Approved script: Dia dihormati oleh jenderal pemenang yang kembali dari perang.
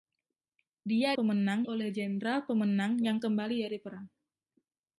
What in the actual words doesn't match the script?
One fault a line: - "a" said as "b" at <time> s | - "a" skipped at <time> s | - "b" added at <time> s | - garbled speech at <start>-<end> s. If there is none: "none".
- "dihormati" said as "pemenang" at 1.1 s